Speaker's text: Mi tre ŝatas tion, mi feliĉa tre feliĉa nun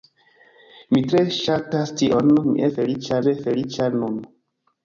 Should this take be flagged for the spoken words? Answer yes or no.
no